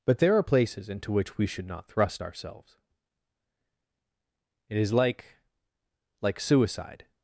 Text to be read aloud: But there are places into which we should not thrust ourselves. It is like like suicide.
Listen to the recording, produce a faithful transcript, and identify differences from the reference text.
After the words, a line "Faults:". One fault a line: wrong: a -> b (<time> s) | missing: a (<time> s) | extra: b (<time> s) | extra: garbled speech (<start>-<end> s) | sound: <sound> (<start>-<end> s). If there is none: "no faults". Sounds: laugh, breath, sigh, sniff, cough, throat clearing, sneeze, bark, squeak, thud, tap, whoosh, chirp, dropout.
But there are places into which we should not thrust ourselves. It is like like suicide.
Faults:
no faults